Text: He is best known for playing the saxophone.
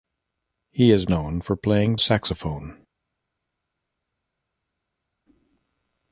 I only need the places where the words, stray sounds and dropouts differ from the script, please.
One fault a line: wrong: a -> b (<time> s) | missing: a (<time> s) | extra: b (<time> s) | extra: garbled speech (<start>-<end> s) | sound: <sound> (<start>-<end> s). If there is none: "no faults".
missing: best (1.1 s)
missing: the (2.0 s)